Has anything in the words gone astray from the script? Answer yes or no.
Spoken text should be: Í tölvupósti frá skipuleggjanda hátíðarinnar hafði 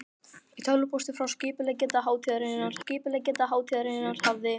yes